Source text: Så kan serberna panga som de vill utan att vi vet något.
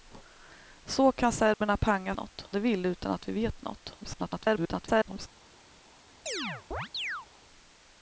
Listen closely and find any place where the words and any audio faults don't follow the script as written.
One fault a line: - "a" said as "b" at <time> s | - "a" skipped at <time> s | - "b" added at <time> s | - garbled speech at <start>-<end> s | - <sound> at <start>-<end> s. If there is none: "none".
- dropout at 1.5-1.6 s
- "som" said as "något" at 2.1 s
- garbled speech at 4.0-5.3 s
- chirp at 6.3-7.3 s